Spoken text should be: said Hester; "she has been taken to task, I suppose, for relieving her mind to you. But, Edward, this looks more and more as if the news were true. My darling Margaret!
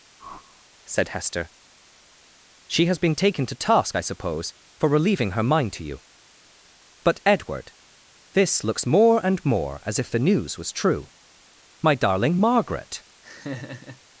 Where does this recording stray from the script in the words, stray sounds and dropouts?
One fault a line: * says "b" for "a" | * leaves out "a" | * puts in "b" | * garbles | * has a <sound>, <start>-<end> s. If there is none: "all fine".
* has a whoosh, 0.2-0.6 s
* says "was" for "were"
* has a laugh, 13.2-14.0 s